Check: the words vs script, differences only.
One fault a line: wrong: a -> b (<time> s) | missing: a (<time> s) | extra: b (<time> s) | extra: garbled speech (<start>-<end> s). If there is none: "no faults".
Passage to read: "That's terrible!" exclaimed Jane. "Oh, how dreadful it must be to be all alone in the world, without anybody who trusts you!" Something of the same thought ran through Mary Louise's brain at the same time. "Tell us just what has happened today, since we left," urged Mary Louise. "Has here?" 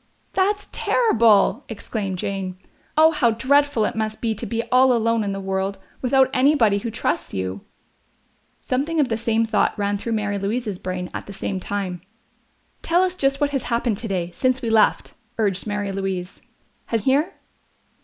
no faults